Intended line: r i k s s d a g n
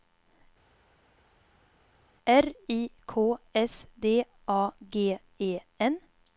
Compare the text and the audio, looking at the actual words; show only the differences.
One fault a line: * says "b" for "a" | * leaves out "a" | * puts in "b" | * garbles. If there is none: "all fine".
* leaves out "s"
* puts in "e"